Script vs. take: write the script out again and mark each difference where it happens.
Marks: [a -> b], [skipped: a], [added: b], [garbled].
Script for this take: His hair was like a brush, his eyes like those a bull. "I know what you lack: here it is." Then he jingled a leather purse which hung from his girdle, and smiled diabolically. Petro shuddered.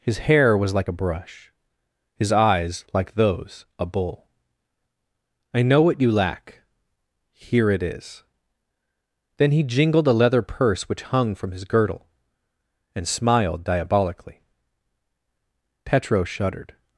His hair was like a brush, his eyes like those a bull. "I know what you lack: here it is." Then he jingled a leather purse which hung from his girdle, and smiled diabolically. Petro shuddered.